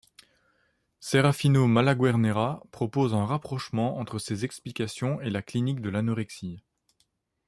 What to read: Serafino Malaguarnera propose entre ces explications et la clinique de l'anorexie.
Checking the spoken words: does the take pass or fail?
fail